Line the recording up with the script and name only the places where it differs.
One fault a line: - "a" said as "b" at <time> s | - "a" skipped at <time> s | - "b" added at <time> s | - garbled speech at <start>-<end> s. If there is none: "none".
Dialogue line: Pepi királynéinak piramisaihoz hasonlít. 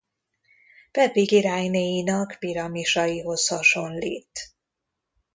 none